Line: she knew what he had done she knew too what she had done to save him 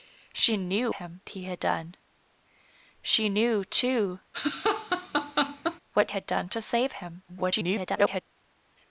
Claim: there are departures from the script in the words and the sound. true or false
true